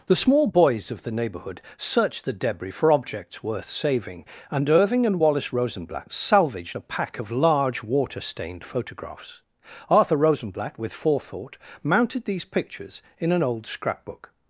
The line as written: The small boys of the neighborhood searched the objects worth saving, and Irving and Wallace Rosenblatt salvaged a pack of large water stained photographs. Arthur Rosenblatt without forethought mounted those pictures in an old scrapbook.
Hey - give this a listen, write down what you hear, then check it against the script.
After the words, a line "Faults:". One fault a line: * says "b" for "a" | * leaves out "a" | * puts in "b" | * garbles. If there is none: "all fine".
The small boys of the neighborhood searched the debris for objects worth saving, and Irving and Wallace Rosenblatt salvaged a pack of large water stained photographs. Arthur Rosenblatt with forethought mounted these pictures in an old scrapbook.
Faults:
* puts in "debris for"
* says "with" for "without"
* says "these" for "those"